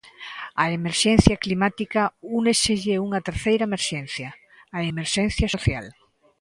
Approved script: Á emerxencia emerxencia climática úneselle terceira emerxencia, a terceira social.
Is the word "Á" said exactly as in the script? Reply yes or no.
yes